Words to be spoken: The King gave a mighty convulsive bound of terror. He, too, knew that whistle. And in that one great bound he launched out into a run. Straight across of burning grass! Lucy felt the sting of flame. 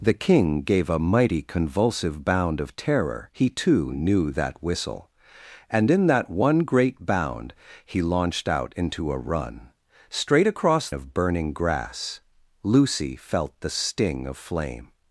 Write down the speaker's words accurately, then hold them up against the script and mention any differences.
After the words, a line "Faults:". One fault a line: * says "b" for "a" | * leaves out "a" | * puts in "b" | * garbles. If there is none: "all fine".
The King gave a mighty convulsive bound of terror. He, too, knew that whistle. And in that one great bound he launched out into a run. Straight across of burning grass! Lucy felt the sting of flame.
Faults:
all fine